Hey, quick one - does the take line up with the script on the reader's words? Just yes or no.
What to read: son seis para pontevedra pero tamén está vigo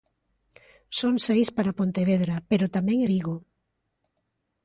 no